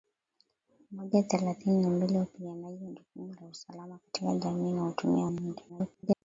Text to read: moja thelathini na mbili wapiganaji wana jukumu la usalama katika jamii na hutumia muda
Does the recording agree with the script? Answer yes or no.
no